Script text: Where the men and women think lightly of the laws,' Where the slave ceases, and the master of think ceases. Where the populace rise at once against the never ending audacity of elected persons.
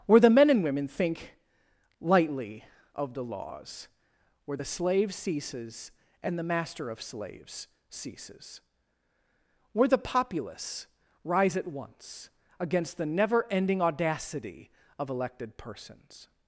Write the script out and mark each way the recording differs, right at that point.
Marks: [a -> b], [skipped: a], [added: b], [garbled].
Where the men and women think lightly of the laws,' Where the slave ceases, and the master of [think -> slaves] ceases. Where the populace rise at once against the never ending audacity of elected persons.